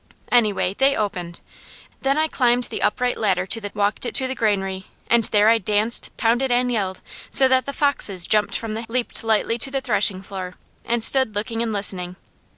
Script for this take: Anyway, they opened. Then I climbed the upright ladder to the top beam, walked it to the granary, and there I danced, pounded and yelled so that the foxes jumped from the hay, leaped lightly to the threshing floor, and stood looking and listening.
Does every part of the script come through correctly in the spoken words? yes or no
no